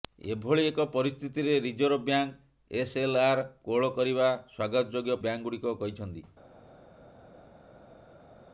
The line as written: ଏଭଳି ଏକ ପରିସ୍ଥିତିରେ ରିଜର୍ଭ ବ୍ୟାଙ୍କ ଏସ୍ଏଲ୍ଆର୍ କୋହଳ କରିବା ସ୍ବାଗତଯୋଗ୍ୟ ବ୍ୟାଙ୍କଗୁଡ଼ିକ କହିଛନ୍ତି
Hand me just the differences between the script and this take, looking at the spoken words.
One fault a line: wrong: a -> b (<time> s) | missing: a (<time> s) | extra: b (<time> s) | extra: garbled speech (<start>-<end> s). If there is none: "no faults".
no faults